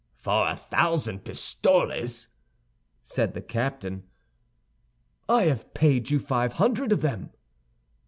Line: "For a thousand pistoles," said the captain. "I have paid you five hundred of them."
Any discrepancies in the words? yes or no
no